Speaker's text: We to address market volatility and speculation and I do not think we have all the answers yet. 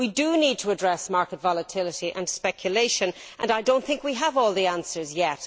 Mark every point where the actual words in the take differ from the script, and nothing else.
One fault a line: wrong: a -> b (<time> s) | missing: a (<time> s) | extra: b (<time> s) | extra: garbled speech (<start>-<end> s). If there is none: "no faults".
extra: do need (0.1 s)